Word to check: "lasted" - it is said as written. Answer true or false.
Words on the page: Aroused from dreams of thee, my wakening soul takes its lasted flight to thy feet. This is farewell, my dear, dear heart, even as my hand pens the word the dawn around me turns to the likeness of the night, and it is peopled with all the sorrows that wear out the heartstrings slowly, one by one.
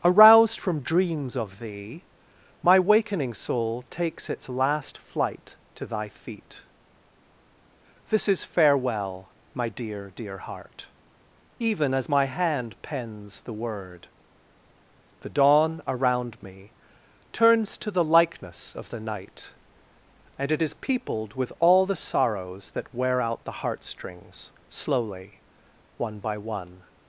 false